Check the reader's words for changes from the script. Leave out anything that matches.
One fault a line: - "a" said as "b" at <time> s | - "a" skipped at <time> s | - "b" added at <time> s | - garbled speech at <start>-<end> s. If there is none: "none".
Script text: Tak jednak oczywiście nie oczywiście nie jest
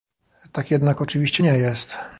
- "oczywiście nie" skipped at 1.6 s